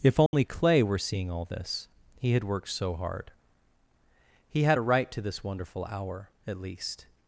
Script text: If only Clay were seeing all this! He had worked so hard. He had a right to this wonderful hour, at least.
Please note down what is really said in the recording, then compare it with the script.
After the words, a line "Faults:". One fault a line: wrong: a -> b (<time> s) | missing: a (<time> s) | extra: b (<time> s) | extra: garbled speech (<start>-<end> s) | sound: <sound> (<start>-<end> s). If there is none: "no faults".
If only Clay were seeing all this! He had worked so hard. He had a right to this wonderful hour, at least.
Faults:
sound: dropout (0.3-0.3 s)